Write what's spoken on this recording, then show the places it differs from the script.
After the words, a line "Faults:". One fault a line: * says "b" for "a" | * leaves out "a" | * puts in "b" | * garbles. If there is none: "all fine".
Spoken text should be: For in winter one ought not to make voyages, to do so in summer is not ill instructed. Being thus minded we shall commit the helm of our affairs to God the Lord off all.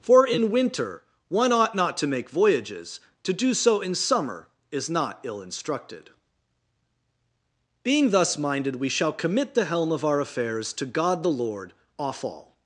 For in winter one ought not to make voyages, to do so in summer is not ill instructed. Being thus minded we shall commit the helm of our affairs to God the Lord off all.
Faults:
all fine